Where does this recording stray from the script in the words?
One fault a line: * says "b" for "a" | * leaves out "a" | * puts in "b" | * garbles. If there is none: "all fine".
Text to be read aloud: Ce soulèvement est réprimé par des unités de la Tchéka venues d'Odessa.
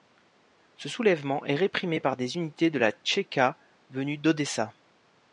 all fine